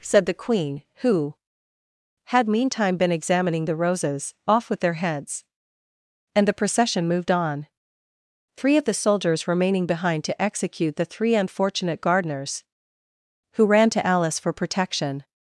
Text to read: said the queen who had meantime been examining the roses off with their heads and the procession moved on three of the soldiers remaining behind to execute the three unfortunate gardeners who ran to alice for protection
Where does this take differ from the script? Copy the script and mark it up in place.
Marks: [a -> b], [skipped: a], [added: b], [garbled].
said the queen who had meantime been examining the roses off with their heads and the procession moved on three of the soldiers remaining behind to execute the three unfortunate gardeners who ran to alice for protection